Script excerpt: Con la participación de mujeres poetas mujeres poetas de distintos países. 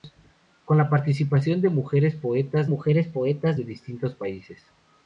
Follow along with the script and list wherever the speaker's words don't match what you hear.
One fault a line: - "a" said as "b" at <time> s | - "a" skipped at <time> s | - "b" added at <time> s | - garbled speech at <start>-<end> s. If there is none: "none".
none